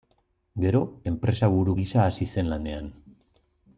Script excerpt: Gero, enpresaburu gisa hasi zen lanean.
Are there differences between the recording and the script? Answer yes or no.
no